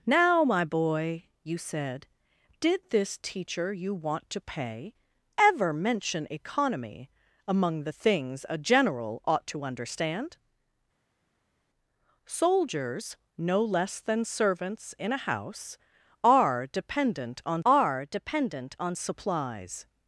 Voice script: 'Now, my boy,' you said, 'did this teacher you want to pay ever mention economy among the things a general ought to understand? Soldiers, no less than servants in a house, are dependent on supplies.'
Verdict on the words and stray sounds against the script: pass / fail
fail